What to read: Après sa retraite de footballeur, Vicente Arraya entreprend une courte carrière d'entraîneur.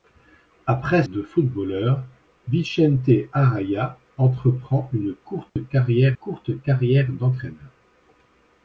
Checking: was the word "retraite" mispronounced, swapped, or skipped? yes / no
yes